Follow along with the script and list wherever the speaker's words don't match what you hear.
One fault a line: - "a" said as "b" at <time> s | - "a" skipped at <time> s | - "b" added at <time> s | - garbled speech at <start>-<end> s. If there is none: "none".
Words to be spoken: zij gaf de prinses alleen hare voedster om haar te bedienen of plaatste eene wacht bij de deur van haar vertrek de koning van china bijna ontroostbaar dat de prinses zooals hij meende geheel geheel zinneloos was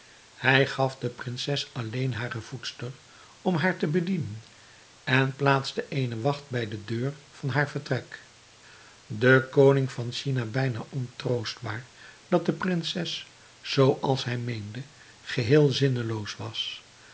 - "zij" said as "hij" at 0.3 s
- "of" said as "en" at 5.0 s
- "geheel" skipped at 15.7 s